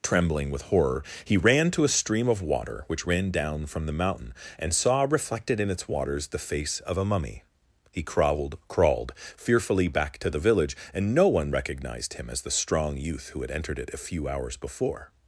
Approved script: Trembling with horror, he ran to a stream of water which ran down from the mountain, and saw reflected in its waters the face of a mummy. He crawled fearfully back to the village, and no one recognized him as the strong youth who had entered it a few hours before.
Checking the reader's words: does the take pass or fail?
fail